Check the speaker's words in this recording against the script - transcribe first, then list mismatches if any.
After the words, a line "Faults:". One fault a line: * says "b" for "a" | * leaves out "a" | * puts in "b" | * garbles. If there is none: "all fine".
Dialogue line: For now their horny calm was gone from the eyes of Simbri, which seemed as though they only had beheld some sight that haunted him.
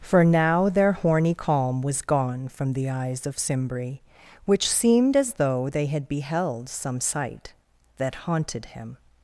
For now their horny calm was gone from the eyes of Simbri, which seemed as though they had beheld some sight that haunted him.
Faults:
* leaves out "only"